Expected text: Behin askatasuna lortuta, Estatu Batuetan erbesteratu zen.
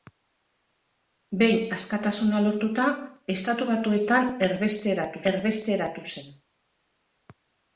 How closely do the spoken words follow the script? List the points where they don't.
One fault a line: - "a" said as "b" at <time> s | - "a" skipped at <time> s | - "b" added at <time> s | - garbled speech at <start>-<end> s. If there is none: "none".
- "erbesteratu" added at 5.3 s